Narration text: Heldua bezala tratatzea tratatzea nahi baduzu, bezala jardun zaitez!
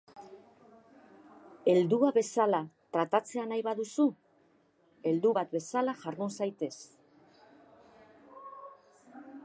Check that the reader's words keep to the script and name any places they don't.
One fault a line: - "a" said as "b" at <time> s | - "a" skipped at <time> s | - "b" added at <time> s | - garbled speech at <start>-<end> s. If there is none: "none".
- "tratatzea" skipped at 3.5 s
- "heldu bat" added at 5.1 s